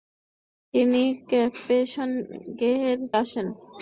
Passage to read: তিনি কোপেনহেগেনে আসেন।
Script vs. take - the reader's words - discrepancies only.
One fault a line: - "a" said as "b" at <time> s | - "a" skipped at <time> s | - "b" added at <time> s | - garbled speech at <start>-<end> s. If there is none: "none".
none